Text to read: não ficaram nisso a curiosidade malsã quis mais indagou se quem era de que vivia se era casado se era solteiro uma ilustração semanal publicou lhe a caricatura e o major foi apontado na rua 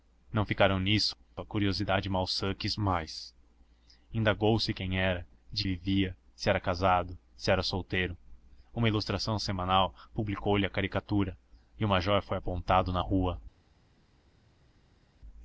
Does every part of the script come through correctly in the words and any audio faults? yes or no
no